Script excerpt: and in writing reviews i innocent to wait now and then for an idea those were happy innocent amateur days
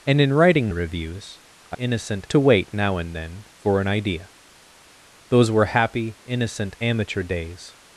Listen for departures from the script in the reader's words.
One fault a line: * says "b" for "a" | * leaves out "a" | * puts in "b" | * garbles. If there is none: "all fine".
all fine